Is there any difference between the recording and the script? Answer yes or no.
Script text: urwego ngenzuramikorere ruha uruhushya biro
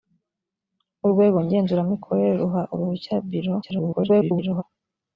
yes